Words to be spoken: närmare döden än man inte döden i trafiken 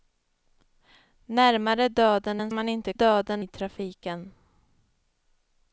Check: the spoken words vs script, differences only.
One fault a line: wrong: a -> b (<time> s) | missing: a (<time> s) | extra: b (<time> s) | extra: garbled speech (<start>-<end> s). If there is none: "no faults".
no faults